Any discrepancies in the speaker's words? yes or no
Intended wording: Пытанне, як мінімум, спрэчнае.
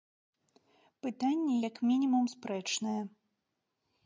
no